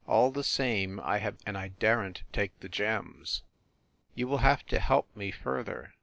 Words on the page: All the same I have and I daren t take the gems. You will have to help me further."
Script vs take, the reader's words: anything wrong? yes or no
no